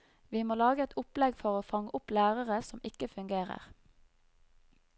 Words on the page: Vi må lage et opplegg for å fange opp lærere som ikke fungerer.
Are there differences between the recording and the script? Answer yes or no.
no